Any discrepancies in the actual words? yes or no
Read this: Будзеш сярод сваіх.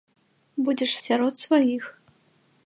no